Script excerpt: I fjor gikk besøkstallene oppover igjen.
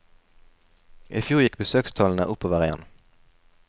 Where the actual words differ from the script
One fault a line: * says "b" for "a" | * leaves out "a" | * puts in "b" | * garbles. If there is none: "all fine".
all fine